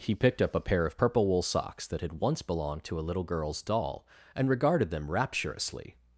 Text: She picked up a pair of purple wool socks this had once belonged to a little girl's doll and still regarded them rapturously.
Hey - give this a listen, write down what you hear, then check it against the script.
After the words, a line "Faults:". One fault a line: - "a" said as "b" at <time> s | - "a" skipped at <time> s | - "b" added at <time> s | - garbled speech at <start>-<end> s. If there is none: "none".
He picked up a pair of purple wool socks that had once belonged to a little girl's doll and regarded them rapturously.
Faults:
- "She" said as "He" at 0.0 s
- "this" said as "that" at 1.9 s
- "still" skipped at 4.5 s